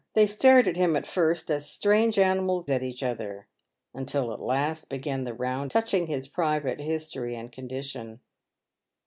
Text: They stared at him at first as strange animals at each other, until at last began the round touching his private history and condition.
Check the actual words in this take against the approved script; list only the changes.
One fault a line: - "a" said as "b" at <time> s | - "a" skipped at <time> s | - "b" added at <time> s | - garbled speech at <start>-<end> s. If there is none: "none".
none